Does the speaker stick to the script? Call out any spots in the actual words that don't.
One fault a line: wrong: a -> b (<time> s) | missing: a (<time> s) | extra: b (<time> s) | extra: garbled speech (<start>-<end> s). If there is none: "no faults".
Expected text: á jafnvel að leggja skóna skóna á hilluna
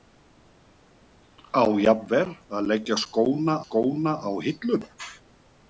no faults